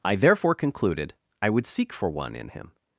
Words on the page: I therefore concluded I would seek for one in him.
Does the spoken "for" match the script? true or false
true